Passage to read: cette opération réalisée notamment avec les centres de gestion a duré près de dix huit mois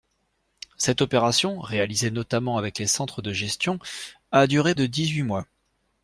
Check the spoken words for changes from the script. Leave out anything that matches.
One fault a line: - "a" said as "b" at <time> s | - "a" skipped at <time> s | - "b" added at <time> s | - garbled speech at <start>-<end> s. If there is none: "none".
- "près" skipped at 4.7 s